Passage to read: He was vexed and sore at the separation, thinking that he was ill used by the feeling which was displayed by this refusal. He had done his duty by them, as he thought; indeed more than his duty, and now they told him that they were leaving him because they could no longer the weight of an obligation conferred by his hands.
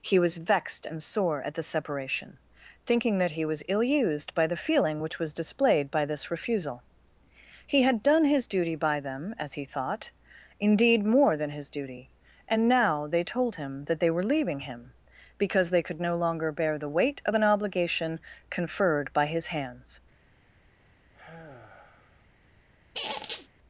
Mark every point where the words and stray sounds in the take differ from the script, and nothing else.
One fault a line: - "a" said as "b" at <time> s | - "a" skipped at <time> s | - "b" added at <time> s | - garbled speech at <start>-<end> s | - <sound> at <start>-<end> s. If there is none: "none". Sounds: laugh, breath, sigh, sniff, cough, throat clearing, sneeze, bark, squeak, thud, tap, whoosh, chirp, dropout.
- "bear" added at 16.5 s
- sigh at 21.1-22.3 s
- squeak at 22.9-23.5 s